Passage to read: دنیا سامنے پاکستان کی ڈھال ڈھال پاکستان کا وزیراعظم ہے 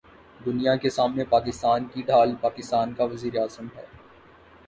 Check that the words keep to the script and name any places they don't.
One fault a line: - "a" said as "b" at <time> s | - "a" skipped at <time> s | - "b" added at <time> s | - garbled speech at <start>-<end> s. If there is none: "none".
- "کے" added at 0.8 s
- "ڈھال" skipped at 2.4 s